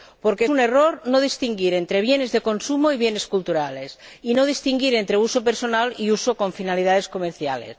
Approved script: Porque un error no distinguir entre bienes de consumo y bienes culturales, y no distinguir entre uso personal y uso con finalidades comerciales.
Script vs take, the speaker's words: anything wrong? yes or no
no